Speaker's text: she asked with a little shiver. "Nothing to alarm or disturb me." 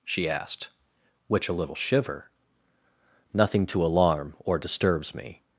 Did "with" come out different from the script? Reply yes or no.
yes